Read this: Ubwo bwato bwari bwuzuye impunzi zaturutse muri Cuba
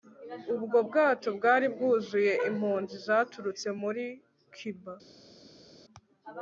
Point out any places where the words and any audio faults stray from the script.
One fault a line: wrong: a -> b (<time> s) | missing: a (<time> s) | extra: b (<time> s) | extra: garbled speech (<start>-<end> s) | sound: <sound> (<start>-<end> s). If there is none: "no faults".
no faults